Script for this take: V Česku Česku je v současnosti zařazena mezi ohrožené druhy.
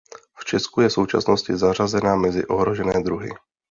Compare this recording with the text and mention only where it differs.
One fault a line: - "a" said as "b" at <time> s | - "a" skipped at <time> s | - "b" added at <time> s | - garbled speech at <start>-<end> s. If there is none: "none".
- "Česku" skipped at 0.8 s